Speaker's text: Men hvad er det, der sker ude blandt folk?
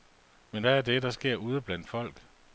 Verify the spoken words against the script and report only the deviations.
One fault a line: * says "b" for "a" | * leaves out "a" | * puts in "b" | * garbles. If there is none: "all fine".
all fine